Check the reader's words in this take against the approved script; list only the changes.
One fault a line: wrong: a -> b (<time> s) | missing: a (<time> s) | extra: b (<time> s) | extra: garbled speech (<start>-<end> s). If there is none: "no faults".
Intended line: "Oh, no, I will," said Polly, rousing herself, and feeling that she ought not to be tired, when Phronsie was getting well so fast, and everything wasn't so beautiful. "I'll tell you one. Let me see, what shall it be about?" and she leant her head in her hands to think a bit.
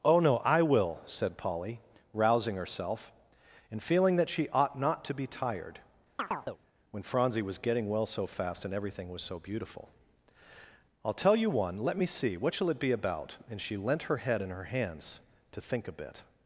wrong: wasn't -> was (9.1 s)